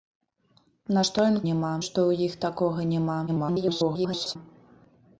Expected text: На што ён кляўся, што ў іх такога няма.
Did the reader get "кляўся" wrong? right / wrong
wrong